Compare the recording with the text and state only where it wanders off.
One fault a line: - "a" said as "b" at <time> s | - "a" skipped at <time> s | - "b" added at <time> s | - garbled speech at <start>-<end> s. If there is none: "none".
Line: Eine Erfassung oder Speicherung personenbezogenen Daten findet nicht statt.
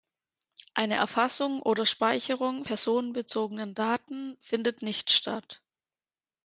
none